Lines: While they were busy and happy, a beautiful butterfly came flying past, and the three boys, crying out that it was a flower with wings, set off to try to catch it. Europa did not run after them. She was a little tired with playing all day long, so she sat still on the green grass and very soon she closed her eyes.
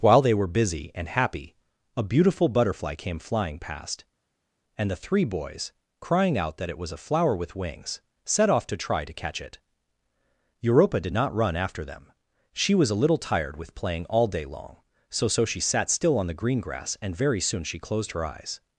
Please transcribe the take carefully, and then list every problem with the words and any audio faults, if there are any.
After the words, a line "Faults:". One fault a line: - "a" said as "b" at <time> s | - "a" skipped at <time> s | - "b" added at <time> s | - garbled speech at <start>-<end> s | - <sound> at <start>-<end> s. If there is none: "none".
While they were busy and happy, a beautiful butterfly came flying past, and the three boys, crying out that it was a flower with wings, set off to try to catch it. Europa did not run after them. She was a little tired with playing all day long, so so she sat still on the green grass and very soon she closed her eyes.
Faults:
- "so" added at 15.3 s